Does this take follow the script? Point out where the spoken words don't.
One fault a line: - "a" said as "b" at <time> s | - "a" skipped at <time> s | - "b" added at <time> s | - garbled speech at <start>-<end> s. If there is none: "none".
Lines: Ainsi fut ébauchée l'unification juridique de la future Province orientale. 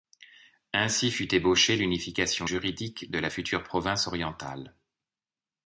none